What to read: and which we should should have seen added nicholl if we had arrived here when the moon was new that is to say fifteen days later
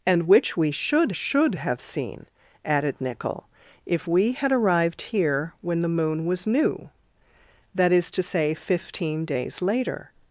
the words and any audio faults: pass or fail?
pass